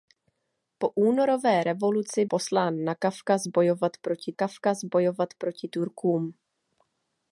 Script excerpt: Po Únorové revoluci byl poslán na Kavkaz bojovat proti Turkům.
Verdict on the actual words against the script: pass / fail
fail